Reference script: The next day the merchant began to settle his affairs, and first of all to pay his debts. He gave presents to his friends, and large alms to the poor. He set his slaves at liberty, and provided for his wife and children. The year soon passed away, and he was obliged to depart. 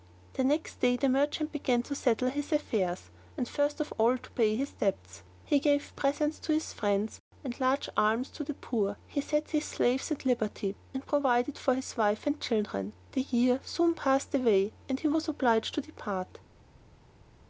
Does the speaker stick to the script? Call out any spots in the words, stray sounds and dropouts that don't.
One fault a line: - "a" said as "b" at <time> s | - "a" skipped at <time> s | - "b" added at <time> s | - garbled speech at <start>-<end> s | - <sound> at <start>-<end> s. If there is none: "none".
none